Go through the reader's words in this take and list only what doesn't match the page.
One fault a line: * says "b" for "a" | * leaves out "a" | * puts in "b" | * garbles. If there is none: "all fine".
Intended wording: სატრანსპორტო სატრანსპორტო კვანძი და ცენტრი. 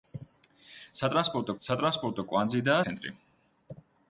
all fine